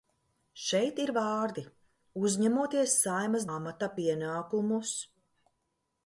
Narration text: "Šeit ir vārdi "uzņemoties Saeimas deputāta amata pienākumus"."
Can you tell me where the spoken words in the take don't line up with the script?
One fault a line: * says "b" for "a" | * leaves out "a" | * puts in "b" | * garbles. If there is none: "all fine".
* leaves out "deputāta"